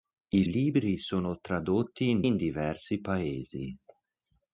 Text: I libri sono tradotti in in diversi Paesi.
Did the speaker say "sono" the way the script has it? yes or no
yes